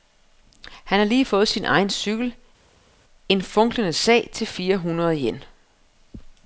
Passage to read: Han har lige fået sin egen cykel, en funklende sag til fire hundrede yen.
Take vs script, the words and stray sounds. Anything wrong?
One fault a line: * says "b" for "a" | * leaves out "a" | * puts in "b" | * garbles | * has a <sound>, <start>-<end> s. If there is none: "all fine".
all fine